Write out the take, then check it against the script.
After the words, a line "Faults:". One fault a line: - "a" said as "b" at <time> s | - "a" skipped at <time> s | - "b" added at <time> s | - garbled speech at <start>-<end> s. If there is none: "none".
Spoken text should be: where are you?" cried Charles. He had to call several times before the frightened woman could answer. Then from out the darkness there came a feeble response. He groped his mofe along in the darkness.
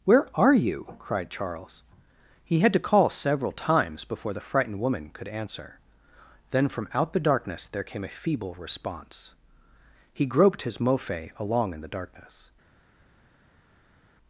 where are you?" cried Charles. He had to call several times before the frightened woman could answer. Then from out the darkness there came a feeble response. He groped his mofe along in the darkness.
Faults:
none